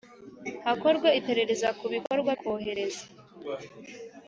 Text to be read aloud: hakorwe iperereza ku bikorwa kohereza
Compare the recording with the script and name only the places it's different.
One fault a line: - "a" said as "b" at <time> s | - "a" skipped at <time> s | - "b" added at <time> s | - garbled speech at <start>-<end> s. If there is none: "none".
none